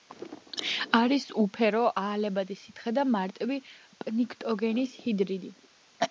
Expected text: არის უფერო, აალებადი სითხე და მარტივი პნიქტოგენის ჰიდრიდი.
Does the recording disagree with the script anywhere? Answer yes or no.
no